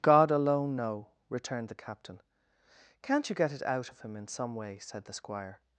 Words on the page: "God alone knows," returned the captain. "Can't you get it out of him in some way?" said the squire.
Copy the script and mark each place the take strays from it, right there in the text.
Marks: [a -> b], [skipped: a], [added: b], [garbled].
"God alone [knows," -> know] returned the captain. "Can't you get it out of him in some way?" said the squire.